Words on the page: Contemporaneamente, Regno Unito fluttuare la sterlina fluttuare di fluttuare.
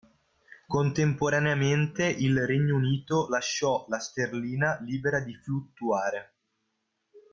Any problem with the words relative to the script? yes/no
yes